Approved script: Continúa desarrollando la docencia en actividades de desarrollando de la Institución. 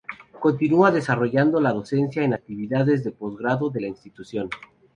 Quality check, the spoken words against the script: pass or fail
fail